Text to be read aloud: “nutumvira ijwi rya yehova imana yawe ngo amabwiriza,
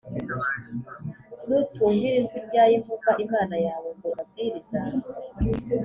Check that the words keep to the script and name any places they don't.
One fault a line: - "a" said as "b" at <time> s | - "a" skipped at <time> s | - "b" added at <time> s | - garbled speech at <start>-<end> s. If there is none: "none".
none